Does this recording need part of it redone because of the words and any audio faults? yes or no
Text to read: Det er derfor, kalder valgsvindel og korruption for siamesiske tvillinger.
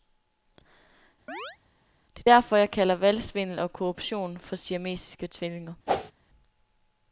yes